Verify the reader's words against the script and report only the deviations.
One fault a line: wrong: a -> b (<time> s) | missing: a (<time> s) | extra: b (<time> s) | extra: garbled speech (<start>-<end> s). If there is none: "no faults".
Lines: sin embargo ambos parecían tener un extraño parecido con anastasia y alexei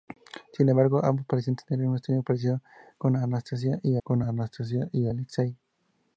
extra: con anastasia y (4.0 s)